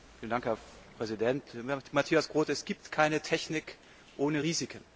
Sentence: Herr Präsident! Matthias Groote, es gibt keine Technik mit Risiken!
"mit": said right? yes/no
no